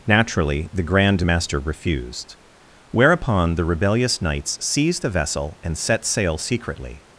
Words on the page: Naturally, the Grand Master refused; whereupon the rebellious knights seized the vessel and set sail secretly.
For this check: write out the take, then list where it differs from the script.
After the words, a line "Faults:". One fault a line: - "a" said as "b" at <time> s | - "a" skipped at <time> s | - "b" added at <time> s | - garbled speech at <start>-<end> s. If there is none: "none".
Naturally, the Grand Master refused; whereupon the rebellious knights seized the vessel and set sail secretly.
Faults:
none